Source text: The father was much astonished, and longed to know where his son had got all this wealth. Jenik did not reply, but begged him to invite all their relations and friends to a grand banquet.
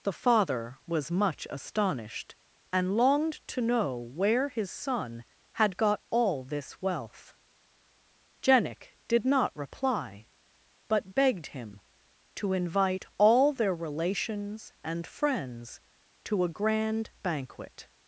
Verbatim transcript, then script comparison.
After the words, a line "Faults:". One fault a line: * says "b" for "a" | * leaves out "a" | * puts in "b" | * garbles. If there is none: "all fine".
The father was much astonished, and longed to know where his son had got all this wealth. Jenik did not reply, but begged him to invite all their relations and friends to a grand banquet.
Faults:
all fine